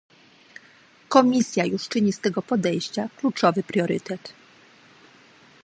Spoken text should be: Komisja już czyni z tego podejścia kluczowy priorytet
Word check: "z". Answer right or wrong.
right